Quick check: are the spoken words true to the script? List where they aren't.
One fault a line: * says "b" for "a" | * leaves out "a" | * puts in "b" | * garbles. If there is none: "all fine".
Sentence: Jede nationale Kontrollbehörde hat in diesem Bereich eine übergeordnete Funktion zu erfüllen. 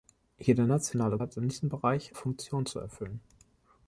* leaves out "Kontrollbehörde"
* leaves out "eine übergeordnete"